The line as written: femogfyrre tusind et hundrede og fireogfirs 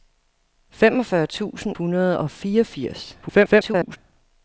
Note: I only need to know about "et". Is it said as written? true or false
false